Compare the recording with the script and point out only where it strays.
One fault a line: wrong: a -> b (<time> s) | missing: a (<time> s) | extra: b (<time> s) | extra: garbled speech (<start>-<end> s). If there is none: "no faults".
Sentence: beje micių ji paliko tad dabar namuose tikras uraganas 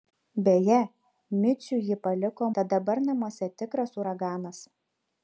no faults